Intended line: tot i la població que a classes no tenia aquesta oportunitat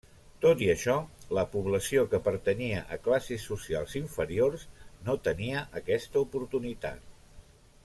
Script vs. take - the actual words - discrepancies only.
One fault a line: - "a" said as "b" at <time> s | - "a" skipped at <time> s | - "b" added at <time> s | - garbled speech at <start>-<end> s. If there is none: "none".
- "això" added at 0.7 s
- "pertanyia" added at 2.3 s
- "socials inferiors" added at 3.5 s